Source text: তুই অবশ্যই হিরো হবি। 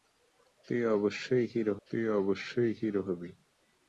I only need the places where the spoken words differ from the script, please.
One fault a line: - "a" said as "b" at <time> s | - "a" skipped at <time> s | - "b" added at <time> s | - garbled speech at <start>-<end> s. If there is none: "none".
- "তুই অবশ্যই হিরো" added at 1.9 s